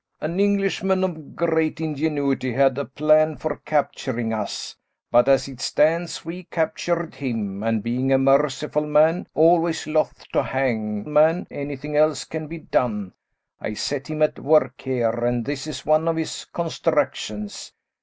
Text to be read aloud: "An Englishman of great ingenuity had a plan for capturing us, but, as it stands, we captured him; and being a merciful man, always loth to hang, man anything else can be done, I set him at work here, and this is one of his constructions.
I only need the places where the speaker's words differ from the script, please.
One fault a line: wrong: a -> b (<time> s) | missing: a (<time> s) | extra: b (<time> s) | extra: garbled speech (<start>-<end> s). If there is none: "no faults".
no faults